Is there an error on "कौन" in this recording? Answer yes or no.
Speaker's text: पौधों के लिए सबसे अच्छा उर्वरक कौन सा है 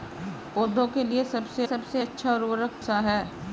yes